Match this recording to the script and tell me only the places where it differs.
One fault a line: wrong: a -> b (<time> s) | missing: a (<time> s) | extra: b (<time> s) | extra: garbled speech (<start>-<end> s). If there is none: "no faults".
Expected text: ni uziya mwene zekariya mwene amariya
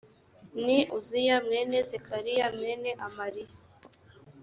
no faults